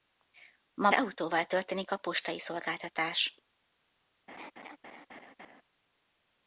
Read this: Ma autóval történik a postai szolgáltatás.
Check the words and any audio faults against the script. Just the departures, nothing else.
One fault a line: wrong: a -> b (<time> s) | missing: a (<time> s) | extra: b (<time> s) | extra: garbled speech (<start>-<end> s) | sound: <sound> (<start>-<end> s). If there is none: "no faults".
sound: laugh (4.3-5.6 s)